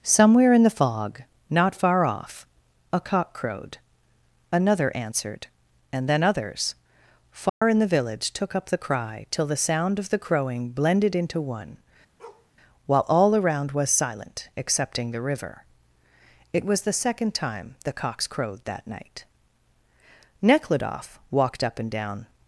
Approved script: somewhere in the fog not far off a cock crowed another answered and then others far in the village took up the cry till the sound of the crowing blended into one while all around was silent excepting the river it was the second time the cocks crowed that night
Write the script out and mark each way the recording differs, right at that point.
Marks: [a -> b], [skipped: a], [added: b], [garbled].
somewhere in the fog not far off a cock crowed another answered and then others far in the village took up the cry till the sound of the crowing blended into one while all around was silent excepting the river it was the second time the cocks crowed that night [added: nekhludoff walked up and down]